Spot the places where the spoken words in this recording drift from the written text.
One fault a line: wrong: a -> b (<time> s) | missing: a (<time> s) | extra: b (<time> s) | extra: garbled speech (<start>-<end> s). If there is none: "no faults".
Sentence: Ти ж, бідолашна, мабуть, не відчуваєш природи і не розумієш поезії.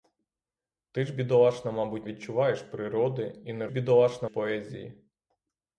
missing: не (2.1 s)
wrong: розумієш -> бідолашна (3.7 s)